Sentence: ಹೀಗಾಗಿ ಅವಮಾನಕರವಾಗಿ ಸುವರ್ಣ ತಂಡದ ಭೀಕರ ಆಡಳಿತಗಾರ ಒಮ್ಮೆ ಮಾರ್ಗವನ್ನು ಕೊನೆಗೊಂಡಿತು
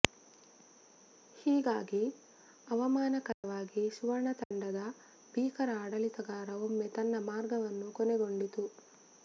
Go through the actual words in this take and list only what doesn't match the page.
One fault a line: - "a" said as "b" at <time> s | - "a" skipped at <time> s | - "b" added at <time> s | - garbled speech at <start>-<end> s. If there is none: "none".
- "ತನ್ನ" added at 7.0 s